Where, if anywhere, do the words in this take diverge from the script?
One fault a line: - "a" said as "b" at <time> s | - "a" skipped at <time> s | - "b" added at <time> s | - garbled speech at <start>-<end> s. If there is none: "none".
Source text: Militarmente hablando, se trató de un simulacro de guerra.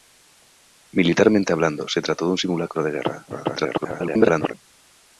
- garbled speech at 3.3-4.5 s